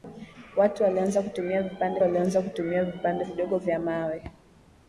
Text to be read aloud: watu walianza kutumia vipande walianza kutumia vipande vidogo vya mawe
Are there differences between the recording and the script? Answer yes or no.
no